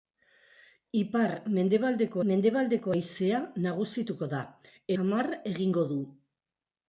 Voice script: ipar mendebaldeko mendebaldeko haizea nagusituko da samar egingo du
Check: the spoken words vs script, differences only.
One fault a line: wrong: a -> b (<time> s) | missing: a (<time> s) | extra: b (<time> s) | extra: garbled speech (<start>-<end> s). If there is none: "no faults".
no faults